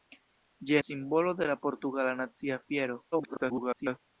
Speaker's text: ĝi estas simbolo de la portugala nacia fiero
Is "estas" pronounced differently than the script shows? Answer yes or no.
yes